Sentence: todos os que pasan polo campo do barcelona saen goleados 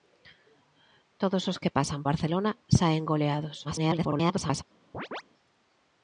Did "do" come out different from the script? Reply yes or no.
yes